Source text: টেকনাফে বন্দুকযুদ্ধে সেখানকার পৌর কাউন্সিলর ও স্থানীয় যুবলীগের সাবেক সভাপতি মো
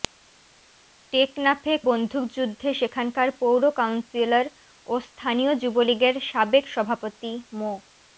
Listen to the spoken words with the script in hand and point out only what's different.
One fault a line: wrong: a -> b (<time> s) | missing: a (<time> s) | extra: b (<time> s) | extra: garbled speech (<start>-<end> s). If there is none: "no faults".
no faults